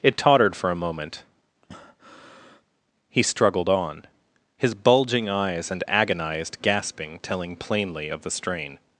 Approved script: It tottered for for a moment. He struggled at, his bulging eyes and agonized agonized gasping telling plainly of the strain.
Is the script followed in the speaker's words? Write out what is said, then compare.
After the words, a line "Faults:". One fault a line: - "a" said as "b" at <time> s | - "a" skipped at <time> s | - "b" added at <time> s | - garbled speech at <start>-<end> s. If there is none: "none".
It tottered for a moment. He struggled on, his bulging eyes and agonized gasping telling plainly of the strain.
Faults:
- "for" skipped at 0.7 s
- "at" said as "on" at 3.7 s
- "agonized" skipped at 6.6 s